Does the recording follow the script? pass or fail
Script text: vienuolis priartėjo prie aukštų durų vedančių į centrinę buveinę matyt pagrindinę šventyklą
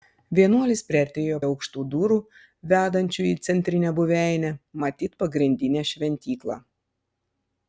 fail